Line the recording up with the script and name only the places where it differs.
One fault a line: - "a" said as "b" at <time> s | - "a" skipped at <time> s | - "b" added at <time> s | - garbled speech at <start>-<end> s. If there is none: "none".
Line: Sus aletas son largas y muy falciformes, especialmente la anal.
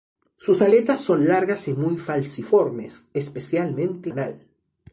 - "la" skipped at 4.1 s